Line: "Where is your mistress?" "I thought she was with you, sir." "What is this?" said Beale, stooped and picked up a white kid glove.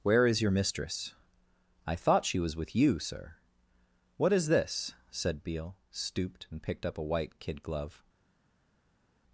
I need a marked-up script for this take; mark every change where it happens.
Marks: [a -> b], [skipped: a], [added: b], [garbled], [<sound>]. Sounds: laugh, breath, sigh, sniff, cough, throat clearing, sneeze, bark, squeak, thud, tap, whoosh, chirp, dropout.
"Where is your mistress?" "I thought she was with you, sir." "What is this?" said Beale, stooped and picked up a white kid glove.